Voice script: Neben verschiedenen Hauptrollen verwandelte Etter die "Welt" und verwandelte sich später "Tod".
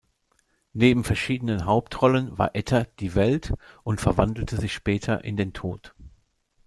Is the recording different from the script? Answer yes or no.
yes